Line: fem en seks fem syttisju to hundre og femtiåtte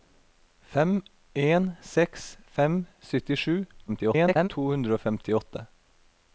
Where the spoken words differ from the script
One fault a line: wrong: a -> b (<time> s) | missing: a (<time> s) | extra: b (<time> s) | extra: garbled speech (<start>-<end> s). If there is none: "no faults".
extra: garbled speech (3.9-4.5 s)